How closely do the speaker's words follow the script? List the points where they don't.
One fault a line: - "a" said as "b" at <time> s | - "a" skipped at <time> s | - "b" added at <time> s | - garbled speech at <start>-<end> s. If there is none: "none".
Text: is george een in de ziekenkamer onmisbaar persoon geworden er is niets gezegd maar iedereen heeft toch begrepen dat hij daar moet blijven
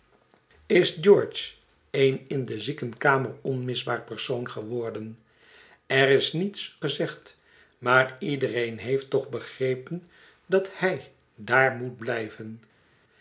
none